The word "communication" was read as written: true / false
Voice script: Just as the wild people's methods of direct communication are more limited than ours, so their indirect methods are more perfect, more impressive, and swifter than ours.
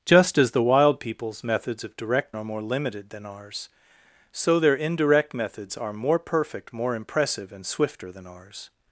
false